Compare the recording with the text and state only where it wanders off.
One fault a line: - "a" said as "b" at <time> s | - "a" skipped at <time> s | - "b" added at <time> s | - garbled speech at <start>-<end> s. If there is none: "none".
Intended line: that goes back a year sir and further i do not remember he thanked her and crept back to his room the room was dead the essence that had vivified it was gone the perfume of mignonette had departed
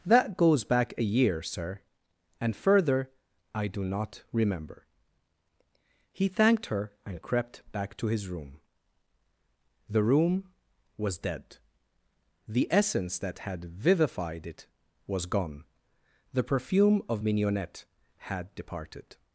none